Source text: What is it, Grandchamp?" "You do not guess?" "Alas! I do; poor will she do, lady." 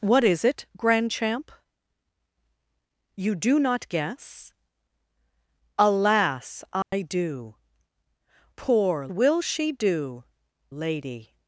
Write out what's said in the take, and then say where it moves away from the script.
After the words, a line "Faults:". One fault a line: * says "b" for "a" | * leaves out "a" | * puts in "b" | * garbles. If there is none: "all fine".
What is it, Grandchamp?" "You do not guess?" "Alas! I do; poor will she do, lady."
Faults:
all fine